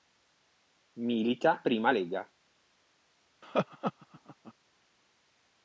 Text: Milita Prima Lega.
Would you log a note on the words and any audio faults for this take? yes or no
yes